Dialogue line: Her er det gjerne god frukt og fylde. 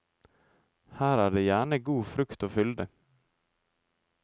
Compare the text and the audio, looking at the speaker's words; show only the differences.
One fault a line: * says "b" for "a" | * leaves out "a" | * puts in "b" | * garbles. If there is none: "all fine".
all fine